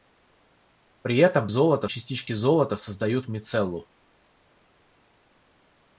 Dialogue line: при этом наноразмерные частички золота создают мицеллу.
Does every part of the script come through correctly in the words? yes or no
no